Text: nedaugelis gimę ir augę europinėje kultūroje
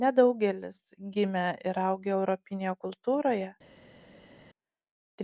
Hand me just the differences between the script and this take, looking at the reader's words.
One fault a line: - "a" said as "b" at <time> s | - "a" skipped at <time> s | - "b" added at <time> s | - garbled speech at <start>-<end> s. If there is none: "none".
none